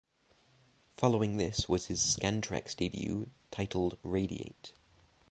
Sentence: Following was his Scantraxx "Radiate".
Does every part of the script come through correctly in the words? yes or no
no